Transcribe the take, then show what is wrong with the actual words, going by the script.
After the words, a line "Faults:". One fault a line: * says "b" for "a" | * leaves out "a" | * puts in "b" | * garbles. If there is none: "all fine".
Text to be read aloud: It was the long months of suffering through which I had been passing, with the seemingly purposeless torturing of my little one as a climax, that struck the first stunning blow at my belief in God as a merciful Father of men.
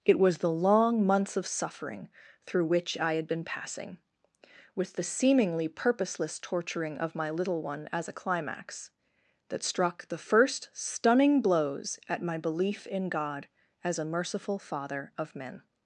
It was the long months of suffering through which I had been passing, with the seemingly purposeless torturing of my little one as a climax, that struck the first stunning blows at my belief in God as a merciful Father of men.
Faults:
* says "blows" for "blow"